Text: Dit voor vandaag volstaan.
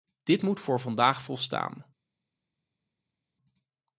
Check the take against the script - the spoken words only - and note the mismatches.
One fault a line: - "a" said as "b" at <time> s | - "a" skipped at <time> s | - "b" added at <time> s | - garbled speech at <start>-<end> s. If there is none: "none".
- "moet" added at 0.4 s